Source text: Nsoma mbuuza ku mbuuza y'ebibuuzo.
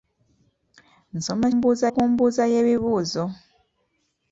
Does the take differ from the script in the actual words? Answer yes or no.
no